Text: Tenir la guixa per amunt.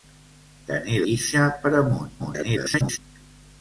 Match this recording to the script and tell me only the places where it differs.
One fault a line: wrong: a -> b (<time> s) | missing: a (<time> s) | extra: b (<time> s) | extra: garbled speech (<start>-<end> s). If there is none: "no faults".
missing: la (1.0 s)
extra: garbled speech (2.2-3.0 s)